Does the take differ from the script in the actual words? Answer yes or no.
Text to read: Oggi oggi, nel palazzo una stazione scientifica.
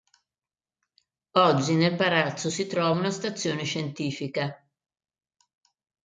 yes